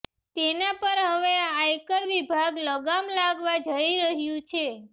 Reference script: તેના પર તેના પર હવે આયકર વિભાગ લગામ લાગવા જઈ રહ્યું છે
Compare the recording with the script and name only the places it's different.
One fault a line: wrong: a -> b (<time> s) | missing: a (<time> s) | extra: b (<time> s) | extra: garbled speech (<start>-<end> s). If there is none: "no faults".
missing: તેના પર (1.0 s)